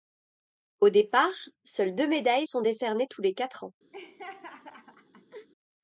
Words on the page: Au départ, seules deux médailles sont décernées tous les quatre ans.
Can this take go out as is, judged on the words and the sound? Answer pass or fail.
fail